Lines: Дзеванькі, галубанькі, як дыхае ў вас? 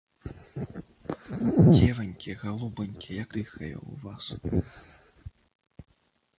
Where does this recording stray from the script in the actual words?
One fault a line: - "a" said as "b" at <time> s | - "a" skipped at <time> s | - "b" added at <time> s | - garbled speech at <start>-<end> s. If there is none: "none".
none